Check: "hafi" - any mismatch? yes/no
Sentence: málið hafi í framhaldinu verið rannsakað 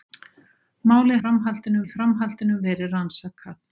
yes